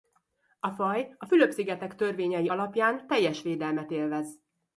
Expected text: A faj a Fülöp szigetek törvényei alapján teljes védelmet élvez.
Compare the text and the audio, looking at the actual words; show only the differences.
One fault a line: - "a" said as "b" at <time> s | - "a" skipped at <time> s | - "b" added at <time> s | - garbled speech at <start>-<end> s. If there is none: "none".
none